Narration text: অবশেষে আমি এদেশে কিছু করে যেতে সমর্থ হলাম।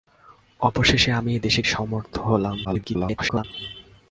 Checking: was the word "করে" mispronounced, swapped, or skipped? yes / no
yes